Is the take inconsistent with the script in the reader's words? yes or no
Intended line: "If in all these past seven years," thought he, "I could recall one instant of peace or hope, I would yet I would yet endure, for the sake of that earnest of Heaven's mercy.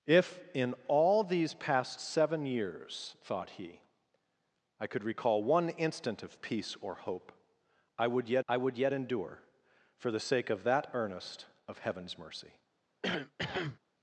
no